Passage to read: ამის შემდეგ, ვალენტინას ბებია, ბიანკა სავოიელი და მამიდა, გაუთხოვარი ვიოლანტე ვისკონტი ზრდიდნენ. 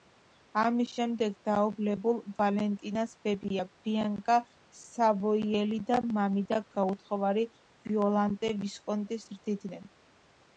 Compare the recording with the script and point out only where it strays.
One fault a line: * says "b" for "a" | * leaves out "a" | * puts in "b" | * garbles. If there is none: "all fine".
* puts in "დაობლებულ"